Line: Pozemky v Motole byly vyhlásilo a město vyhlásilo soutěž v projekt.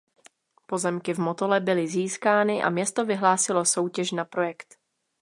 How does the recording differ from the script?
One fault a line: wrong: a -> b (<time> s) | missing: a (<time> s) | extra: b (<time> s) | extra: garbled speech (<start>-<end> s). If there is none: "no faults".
wrong: vyhlásilo -> získány (1.9 s)
wrong: v -> na (4.1 s)